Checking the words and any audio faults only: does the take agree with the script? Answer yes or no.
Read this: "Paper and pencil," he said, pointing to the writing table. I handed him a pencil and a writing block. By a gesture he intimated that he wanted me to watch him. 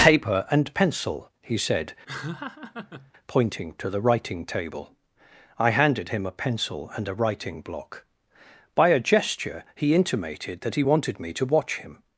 no